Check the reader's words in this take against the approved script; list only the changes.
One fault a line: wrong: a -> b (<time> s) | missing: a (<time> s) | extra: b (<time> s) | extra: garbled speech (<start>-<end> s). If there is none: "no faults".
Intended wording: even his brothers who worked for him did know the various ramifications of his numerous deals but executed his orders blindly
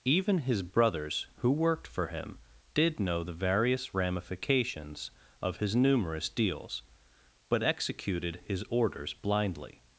no faults